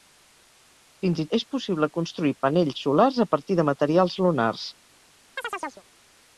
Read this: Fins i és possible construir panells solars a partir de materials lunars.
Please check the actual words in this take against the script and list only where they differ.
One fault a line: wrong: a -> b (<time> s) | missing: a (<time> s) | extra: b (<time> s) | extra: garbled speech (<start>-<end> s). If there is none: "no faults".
no faults